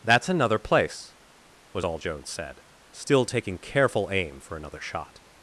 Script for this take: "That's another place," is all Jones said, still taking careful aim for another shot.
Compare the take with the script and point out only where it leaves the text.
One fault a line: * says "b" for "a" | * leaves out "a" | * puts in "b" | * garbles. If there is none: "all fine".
* says "was" for "is"